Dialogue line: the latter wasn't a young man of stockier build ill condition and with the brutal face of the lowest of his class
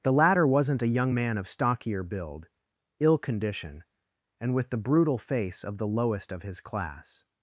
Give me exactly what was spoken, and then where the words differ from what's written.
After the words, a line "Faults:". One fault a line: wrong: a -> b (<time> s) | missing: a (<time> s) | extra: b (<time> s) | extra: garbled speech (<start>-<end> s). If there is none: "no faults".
the latter wasn't a young man of stockier build ill condition and with the brutal face of the lowest of his class
Faults:
no faults